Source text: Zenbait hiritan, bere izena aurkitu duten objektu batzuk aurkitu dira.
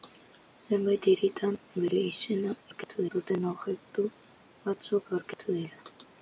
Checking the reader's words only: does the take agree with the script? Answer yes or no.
yes